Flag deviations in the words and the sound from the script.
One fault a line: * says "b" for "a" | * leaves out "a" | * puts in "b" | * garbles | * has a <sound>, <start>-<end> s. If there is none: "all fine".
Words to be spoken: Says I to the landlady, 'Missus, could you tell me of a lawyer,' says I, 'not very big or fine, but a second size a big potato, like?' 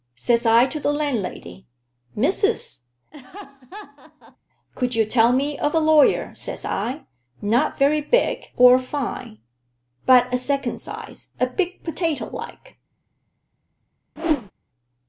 * has a laugh, 3.1-4.4 s
* has a whoosh, 14.2-14.5 s